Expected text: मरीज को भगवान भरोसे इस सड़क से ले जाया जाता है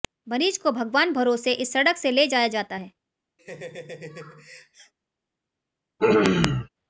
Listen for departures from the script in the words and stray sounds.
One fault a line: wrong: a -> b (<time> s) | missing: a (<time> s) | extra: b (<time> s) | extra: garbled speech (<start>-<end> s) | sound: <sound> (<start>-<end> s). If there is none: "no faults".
sound: laugh (3.4-4.9 s)
sound: throat clearing (6.0-6.7 s)